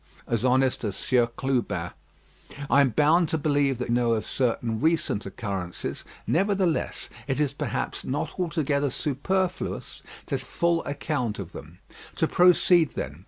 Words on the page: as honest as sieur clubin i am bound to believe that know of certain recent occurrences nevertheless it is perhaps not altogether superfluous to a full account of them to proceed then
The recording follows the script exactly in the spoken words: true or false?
true